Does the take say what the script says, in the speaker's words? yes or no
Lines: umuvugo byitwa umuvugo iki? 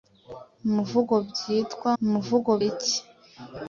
yes